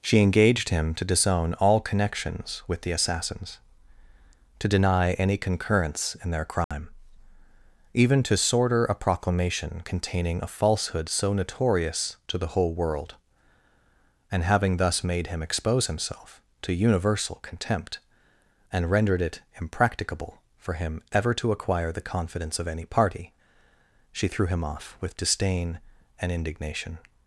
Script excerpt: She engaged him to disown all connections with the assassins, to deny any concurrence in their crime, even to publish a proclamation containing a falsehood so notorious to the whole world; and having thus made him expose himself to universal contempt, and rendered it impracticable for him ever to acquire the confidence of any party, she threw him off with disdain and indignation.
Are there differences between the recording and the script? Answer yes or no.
yes